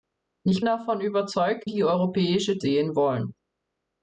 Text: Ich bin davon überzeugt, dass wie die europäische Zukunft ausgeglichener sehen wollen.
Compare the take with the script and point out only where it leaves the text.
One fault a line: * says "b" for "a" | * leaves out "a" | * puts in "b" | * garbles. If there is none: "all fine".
* leaves out "bin"
* leaves out "dass wie"
* leaves out "Zukunft ausgeglichener"